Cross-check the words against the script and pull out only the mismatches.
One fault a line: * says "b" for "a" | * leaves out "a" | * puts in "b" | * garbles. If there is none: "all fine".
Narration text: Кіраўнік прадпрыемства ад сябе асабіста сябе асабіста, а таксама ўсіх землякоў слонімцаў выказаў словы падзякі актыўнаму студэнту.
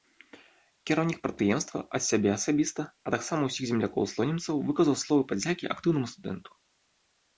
* leaves out "сябе асабіста"